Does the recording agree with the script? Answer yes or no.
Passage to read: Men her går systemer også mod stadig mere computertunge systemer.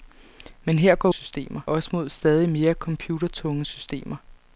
yes